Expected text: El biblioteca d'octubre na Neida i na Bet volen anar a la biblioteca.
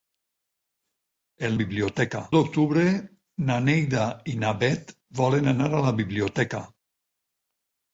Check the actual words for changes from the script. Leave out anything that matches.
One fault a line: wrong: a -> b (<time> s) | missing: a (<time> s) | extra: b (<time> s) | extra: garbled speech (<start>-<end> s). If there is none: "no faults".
no faults